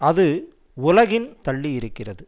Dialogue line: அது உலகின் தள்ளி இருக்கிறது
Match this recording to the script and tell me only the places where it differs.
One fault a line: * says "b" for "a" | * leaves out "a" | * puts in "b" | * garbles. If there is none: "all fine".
all fine